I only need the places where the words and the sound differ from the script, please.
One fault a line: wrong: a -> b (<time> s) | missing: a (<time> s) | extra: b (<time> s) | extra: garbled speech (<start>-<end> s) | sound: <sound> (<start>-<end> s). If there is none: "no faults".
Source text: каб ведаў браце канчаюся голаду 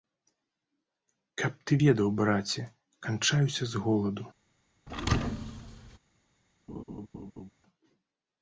extra: ты (1.7 s)
extra: з (3.8 s)
sound: thud (4.9-6.0 s)
sound: laugh (6.7-7.5 s)